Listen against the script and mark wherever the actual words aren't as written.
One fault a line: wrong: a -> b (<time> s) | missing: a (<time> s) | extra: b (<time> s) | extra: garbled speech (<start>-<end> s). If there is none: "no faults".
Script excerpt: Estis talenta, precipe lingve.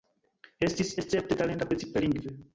extra: escepte (1.0 s)